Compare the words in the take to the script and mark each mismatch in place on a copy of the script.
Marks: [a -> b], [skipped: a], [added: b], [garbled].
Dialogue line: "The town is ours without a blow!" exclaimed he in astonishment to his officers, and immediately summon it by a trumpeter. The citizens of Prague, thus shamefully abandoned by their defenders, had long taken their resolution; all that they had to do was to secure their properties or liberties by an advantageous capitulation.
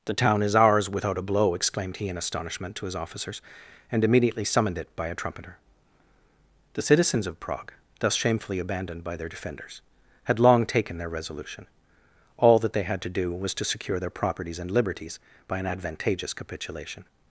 "The town is ours without a blow!" exclaimed he in astonishment to his officers, and immediately [summon -> summoned] it by a trumpeter. The citizens of Prague, thus shamefully abandoned by their defenders, had long taken their resolution; all that they had to do was to secure their properties [or -> and] liberties by an advantageous capitulation.